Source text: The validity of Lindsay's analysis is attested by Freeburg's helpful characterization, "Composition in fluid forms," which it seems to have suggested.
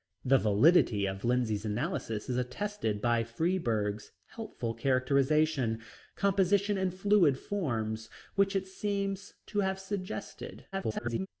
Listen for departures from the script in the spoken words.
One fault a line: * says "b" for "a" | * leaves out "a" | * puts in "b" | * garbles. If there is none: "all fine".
* garbles